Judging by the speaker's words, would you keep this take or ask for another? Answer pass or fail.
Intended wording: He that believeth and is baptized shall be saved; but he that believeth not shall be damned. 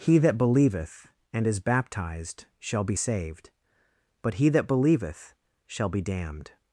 fail